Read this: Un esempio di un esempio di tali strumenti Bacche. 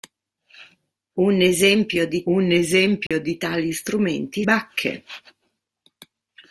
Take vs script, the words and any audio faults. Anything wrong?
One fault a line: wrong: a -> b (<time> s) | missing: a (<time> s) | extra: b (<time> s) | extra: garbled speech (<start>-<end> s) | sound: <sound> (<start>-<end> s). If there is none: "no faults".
sound: dropout (3.1-3.1 s)